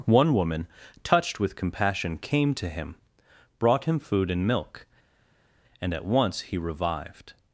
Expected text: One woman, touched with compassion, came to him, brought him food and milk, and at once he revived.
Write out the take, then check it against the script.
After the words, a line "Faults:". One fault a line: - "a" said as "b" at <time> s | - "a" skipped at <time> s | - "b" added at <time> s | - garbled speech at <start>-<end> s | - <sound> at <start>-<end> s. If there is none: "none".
One woman, touched with compassion, came to him, brought him food and milk, and at once he revived.
Faults:
none